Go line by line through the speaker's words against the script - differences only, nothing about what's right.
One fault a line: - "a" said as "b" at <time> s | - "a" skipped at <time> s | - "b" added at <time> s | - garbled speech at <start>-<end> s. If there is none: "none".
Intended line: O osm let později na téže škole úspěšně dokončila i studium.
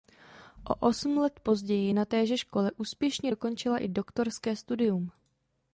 - "doktorské" added at 3.9 s